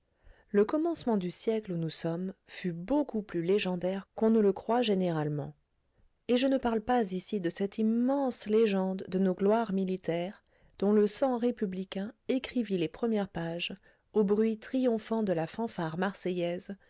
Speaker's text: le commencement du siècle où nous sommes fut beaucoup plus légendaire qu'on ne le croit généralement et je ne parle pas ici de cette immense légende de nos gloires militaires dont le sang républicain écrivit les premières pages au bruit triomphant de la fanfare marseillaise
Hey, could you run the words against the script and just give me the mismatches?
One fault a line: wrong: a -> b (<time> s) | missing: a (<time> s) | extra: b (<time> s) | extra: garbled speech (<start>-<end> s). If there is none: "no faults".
no faults